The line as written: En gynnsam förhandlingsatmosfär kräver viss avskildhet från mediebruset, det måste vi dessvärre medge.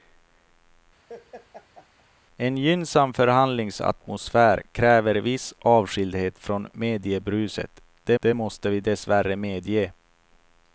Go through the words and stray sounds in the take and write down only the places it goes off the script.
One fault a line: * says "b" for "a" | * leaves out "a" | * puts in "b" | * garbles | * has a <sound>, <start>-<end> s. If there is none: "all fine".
* has a laugh, 1.1-2.1 s
* puts in "det"